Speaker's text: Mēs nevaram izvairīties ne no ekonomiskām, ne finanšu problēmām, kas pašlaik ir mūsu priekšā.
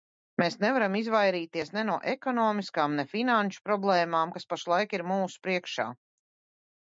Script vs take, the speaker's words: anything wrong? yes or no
no